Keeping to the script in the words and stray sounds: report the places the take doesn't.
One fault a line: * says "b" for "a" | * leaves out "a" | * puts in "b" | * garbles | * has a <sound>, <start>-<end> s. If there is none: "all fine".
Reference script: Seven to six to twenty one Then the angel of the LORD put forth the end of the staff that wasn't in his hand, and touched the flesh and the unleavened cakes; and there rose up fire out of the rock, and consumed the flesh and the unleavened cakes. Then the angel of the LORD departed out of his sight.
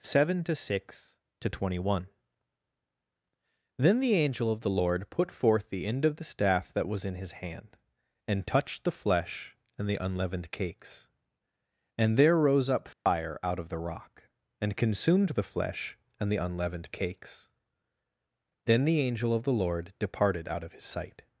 * says "was" for "wasn't"
* has a dropout, 12.9-13.1 s